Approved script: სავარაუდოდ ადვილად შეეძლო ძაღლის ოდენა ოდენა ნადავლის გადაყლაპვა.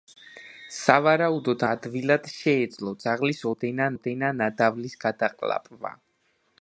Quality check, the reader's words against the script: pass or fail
pass